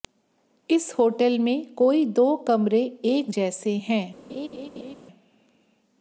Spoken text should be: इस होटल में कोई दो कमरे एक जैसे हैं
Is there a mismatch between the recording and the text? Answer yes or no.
no